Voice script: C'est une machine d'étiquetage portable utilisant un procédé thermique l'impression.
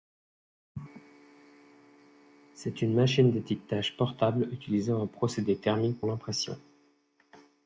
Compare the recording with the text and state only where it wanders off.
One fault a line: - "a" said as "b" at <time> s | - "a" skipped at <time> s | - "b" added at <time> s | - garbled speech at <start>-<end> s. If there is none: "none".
none